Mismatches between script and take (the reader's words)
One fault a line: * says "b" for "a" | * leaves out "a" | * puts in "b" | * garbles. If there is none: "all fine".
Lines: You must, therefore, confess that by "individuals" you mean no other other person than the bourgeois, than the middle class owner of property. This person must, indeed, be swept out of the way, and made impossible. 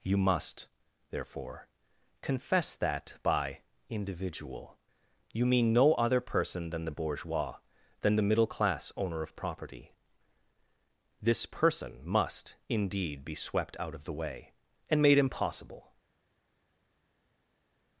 * says "individual" for "individuals"
* leaves out "other"